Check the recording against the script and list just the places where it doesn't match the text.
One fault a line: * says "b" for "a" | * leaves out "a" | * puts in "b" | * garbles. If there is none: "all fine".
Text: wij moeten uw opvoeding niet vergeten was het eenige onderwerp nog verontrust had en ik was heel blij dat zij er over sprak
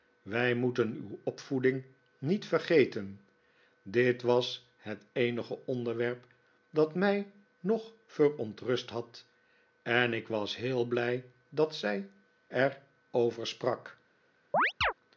* puts in "dit"
* puts in "dat mij"